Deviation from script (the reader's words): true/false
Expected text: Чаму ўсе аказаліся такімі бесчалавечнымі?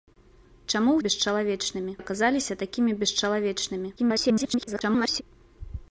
true